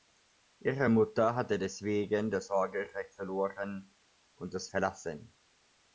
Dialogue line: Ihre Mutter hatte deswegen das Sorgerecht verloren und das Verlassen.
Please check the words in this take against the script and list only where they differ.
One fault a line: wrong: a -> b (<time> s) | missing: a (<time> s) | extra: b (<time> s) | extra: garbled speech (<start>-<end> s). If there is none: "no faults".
no faults